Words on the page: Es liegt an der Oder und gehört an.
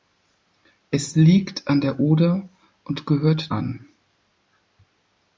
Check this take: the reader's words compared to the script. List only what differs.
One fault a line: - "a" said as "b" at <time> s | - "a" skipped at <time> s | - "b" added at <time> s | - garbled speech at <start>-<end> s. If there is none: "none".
none